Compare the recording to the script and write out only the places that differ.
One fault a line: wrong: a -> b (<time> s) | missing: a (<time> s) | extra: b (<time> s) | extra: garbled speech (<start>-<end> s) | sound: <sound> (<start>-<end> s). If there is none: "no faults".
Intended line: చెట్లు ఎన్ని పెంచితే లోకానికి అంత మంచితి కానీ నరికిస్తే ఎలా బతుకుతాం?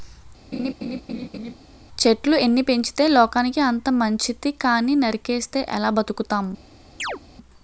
sound: laugh (0.5-1.5 s)
sound: chirp (7.0-7.2 s)